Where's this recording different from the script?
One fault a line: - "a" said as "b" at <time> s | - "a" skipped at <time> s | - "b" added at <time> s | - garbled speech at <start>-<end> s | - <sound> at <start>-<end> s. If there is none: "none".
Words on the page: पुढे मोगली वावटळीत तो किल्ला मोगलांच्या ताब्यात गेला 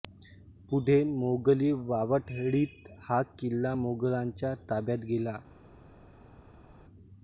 - "तो" said as "हा" at 3.0 s